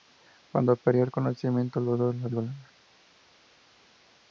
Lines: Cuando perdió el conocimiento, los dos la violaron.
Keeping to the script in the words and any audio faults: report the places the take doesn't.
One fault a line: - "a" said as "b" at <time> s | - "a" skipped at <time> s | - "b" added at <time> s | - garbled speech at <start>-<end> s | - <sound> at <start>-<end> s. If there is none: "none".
none